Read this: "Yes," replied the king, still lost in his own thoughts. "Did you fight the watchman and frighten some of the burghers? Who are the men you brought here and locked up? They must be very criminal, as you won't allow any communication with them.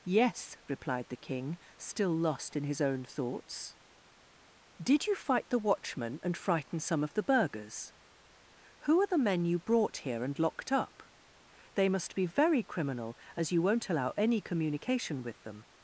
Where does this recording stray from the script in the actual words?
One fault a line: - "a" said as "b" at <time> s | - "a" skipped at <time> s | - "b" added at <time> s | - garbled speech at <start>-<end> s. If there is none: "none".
none